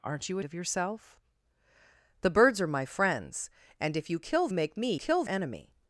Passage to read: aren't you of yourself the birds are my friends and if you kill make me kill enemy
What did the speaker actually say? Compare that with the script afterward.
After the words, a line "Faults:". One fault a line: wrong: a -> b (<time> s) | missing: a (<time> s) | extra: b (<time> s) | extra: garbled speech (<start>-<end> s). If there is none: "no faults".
aren't you of yourself the birds are my friends and if you kill make me kill enemy
Faults:
no faults